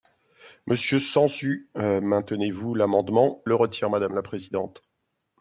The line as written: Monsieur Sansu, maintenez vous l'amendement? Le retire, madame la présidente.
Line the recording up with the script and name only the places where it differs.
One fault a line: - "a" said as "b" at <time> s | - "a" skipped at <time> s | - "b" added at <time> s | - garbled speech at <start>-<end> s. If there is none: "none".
none